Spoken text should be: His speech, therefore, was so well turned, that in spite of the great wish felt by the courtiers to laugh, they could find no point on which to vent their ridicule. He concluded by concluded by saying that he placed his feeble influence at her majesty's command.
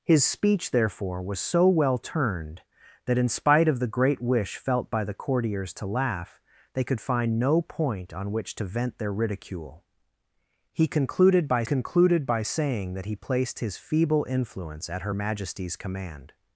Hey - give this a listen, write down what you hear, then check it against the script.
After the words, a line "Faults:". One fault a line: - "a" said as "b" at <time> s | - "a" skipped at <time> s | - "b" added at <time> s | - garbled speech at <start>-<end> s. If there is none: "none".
His speech, therefore, was so well turned, that in spite of the great wish felt by the courtiers to laugh, they could find no point on which to vent their ridicule. He concluded by concluded by saying that he placed his feeble influence at her majesty's command.
Faults:
none